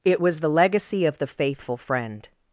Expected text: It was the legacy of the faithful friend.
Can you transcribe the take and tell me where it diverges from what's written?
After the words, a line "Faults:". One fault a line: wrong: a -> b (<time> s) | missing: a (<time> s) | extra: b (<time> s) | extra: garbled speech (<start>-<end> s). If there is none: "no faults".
It was the legacy of the faithful friend.
Faults:
no faults